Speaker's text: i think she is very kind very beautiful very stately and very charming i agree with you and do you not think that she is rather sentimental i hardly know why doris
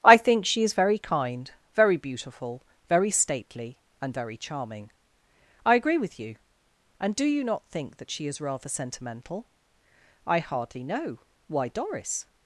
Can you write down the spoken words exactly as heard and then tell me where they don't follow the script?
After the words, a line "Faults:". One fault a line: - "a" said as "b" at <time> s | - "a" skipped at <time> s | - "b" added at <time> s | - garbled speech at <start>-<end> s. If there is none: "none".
i think she is very kind very beautiful very stately and very charming i agree with you and do you not think that she is rather sentimental i hardly know why doris
Faults:
none